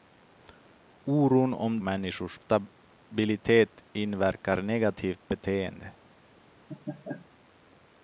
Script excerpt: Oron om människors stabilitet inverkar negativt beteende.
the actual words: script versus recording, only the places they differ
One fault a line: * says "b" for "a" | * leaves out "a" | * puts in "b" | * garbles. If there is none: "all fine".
all fine